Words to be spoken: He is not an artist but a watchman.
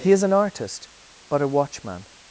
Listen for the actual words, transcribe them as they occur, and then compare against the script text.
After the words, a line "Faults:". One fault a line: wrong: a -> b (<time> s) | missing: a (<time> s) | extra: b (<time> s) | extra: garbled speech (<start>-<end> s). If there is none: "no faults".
He is an artist but a watchman.
Faults:
missing: not (0.2 s)